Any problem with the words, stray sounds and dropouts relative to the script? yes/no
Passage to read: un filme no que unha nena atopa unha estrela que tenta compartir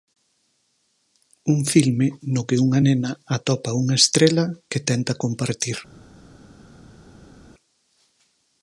no